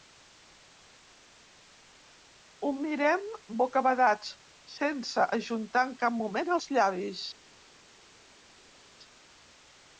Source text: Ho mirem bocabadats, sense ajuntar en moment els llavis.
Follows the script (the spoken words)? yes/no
no